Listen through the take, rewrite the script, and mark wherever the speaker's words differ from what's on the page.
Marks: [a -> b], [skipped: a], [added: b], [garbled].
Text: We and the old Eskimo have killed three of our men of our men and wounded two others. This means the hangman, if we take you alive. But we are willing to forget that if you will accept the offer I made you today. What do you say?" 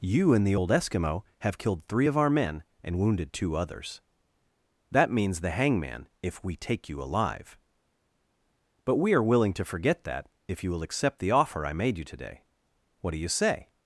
[We -> You] and the old Eskimo have killed three of our men [skipped: of our men] and wounded two others. [This -> That] means the hangman, if we take you alive. But we are willing to forget that if you will accept the offer I made you today. What do you say?"